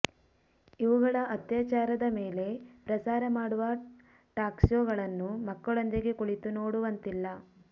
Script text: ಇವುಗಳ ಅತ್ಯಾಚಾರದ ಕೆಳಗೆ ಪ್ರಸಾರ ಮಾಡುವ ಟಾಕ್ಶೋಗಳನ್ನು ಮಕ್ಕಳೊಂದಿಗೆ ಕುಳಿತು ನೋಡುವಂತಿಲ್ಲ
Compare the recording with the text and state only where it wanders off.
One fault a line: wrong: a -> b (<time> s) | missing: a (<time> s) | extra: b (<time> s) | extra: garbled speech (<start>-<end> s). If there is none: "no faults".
wrong: ಕೆಳಗೆ -> ಮೇಲೆ (2.1 s)